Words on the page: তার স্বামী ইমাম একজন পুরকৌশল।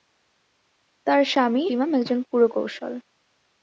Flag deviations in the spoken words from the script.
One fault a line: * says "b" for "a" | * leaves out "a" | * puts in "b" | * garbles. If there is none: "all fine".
all fine